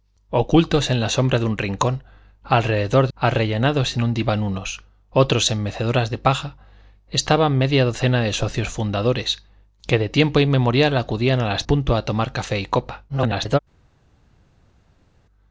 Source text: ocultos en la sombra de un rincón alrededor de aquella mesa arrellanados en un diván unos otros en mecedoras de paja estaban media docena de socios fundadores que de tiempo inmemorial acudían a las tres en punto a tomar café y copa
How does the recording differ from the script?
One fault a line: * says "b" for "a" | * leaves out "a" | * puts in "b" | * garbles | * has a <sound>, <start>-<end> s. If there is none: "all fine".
* leaves out "aquella mesa"
* leaves out "tres en"
* garbles